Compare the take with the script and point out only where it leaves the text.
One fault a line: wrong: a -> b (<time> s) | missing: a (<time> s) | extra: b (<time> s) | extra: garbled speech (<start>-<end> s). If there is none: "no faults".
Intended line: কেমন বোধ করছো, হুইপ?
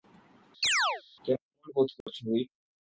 no faults